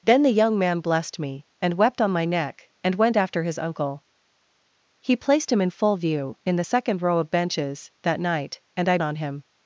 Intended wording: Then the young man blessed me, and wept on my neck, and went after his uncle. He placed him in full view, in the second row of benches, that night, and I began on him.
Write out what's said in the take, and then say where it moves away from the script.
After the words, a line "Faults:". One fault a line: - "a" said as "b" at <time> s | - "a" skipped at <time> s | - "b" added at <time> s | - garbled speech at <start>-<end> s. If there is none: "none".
Then the young man blessed me, and wept on my neck, and went after his uncle. He placed him in full view, in the second row of benches, that night, and I on him.
Faults:
- "began" skipped at 9.0 s